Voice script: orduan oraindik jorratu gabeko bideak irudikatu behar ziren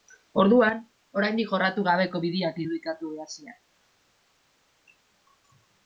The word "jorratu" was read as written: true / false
true